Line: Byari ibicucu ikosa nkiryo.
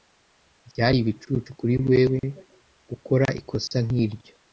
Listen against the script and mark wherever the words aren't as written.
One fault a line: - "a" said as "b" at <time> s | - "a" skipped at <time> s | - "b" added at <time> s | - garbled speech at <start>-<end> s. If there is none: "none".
- "kuri wewe gukora" added at 1.6 s